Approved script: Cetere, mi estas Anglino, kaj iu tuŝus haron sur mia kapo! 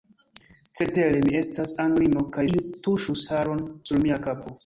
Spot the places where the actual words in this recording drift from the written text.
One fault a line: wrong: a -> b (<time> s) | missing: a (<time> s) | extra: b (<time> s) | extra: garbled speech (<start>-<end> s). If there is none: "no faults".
no faults